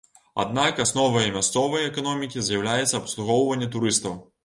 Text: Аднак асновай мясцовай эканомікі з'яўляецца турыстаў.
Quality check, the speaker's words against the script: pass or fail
fail